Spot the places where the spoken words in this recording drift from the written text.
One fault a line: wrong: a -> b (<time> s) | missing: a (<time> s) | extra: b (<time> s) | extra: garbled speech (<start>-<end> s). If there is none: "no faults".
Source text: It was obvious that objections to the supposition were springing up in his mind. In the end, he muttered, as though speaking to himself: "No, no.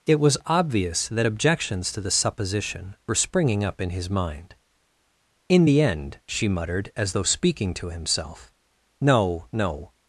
wrong: he -> she (6.3 s)